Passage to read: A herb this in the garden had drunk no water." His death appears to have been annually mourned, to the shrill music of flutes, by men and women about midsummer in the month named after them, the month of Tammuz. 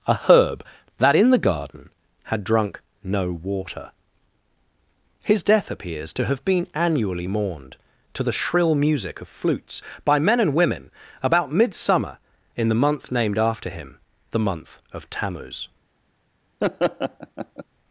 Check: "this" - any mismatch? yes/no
yes